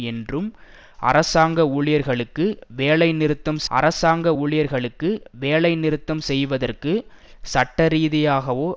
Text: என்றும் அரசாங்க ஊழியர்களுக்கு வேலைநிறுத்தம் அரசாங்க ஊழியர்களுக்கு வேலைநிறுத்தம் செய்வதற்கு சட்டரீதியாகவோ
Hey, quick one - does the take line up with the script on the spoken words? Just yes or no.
yes